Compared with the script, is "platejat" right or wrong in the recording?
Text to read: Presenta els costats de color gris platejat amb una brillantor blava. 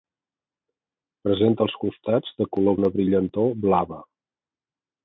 wrong